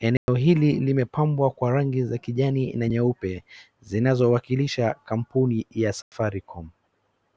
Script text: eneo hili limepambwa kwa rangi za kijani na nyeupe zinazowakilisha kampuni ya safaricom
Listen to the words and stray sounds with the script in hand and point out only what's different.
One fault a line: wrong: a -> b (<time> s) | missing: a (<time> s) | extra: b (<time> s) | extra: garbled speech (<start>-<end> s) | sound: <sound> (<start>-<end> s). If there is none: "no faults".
sound: dropout (0.2-0.3 s)
sound: dropout (6.0-6.1 s)